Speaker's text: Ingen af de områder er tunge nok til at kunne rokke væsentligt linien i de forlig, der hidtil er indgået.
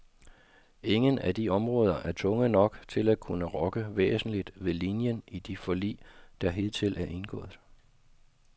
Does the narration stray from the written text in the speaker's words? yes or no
yes